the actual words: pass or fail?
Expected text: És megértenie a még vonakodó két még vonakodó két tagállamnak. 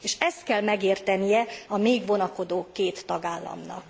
fail